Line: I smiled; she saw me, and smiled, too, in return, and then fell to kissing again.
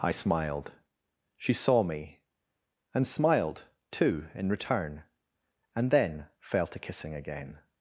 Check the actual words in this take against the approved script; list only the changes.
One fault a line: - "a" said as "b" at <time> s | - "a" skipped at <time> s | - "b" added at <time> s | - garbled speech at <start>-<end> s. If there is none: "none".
none